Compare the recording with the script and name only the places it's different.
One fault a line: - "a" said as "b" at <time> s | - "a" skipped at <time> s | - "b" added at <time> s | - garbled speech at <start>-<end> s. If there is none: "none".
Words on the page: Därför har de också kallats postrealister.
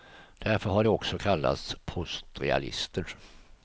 - "de" skipped at 0.8 s